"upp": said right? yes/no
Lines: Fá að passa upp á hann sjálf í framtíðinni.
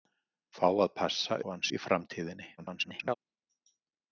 no